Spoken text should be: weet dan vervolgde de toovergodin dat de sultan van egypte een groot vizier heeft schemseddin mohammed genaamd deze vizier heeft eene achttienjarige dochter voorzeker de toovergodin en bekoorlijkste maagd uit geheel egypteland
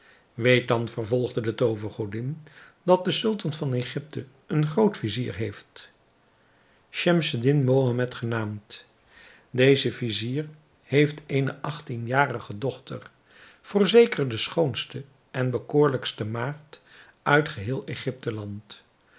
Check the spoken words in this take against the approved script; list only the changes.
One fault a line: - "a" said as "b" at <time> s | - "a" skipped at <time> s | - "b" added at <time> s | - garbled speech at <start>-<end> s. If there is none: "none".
- "toovergodin" said as "schoonste" at 14.4 s